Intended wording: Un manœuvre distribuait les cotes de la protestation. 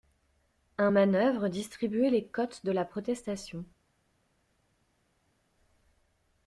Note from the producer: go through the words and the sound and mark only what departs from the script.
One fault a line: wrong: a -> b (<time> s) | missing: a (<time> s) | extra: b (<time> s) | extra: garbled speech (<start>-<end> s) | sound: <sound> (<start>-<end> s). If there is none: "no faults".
no faults